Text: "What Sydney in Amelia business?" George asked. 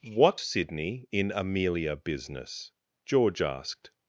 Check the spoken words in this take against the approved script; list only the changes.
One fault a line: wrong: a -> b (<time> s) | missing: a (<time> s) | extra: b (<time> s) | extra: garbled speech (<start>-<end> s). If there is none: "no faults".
no faults